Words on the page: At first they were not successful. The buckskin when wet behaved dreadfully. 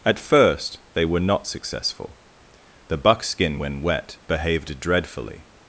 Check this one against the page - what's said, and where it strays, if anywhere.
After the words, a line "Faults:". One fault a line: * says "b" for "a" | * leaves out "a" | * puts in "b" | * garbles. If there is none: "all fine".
At first they were not successful. The buckskin when wet behaved dreadfully.
Faults:
all fine